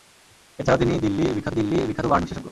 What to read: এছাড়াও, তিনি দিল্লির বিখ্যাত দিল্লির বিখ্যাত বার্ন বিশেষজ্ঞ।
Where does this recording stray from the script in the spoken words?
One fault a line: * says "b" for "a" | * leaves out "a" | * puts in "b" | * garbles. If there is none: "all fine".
all fine